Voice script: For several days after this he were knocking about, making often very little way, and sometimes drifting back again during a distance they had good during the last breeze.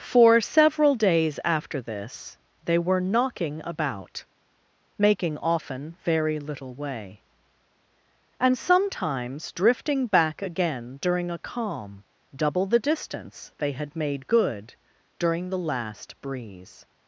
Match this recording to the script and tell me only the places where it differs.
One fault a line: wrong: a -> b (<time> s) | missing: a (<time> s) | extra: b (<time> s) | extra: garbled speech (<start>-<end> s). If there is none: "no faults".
wrong: he -> they (2.6 s)
extra: calm double the (11.4 s)
extra: made (13.9 s)